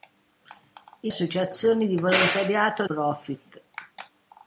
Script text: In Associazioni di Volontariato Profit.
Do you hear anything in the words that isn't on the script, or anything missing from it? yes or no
no